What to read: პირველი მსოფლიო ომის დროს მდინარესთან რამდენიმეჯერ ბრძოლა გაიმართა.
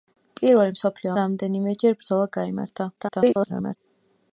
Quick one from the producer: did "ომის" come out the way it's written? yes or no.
no